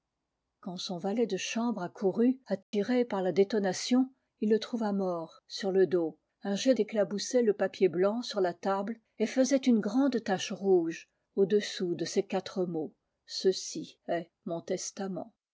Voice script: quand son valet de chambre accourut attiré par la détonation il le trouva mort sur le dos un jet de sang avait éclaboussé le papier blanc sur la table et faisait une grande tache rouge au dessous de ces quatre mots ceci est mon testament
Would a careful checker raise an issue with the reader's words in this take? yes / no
yes